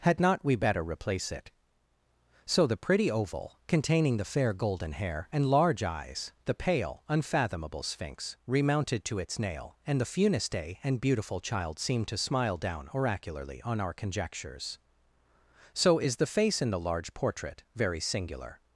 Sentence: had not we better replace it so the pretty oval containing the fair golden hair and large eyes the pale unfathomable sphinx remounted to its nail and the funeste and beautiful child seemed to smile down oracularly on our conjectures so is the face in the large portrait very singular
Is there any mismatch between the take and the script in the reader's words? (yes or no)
no